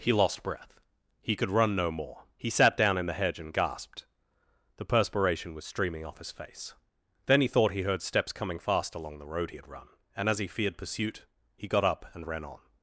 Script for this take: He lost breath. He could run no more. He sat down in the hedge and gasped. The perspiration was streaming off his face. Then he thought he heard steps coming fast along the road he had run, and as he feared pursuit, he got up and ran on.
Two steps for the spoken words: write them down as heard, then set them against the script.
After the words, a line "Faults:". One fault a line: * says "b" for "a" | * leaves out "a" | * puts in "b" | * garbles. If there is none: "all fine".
He lost breath. He could run no more. He sat down in the hedge and gasped. The perspiration was streaming off his face. Then he thought he heard steps coming fast along the road he had run, and as he feared pursuit, he got up and ran on.
Faults:
all fine